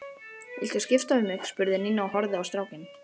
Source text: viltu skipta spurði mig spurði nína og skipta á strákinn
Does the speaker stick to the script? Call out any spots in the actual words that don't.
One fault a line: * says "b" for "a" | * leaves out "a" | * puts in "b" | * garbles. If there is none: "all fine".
* says "við" for "spurði"
* says "horfði" for "skipta"